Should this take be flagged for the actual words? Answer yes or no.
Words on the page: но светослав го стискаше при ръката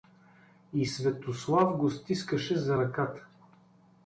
yes